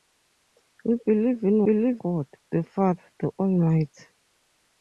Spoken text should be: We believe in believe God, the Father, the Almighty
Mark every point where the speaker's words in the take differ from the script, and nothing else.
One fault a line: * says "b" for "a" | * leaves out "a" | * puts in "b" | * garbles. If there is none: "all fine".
all fine